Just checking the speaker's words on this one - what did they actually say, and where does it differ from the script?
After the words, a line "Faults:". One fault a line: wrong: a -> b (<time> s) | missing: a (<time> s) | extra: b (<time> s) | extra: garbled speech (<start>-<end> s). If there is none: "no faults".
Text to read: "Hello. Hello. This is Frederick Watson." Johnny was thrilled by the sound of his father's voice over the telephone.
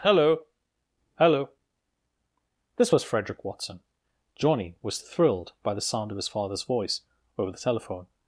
"Hello. Hello. This was Frederick Watson." Johnny was thrilled by the sound of his father's voice over the telephone.
Faults:
wrong: is -> was (2.9 s)